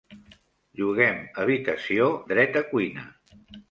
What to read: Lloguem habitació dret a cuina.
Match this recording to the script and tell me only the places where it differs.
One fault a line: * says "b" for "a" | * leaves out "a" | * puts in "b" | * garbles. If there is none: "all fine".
all fine